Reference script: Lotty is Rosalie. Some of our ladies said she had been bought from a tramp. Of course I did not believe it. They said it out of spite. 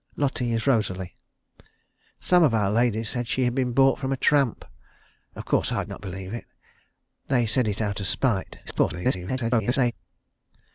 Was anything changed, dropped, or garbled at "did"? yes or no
yes